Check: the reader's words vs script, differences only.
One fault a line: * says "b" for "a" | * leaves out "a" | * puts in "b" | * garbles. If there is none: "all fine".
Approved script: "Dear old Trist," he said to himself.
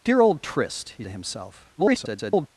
* leaves out "said"
* garbles